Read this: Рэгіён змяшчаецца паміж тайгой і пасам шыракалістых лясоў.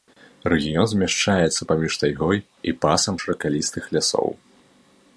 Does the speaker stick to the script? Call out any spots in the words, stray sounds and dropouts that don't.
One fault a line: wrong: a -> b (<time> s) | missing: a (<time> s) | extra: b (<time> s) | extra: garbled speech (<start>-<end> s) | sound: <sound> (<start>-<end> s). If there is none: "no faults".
no faults